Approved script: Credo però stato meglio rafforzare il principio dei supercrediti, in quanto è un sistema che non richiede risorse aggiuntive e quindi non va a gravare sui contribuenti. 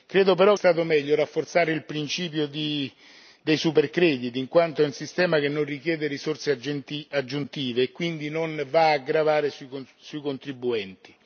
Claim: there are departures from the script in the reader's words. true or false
false